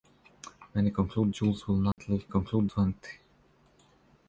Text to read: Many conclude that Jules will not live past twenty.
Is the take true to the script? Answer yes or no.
no